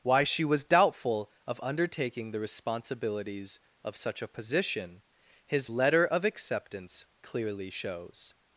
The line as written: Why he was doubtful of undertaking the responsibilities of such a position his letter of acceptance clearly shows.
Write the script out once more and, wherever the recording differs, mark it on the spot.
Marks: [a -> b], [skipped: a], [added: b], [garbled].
Why [he -> she] was doubtful of undertaking the responsibilities of such a position his letter of acceptance clearly shows.